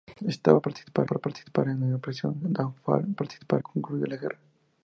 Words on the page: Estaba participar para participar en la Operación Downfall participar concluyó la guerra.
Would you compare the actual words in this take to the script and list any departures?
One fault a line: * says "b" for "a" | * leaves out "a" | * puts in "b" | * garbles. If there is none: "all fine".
all fine